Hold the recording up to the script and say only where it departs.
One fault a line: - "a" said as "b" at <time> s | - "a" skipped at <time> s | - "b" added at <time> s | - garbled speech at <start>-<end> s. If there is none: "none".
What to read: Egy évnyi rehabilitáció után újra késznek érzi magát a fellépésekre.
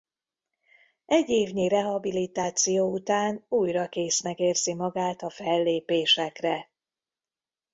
none